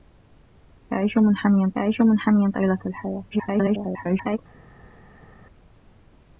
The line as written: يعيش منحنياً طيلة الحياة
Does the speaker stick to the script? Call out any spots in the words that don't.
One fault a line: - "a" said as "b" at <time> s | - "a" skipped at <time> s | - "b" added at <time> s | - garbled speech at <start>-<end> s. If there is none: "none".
- "يعيش منحنياً" added at 1.8 s
- garbled speech at 3.3-4.4 s